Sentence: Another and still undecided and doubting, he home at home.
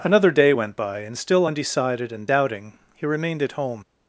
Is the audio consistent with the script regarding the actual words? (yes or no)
no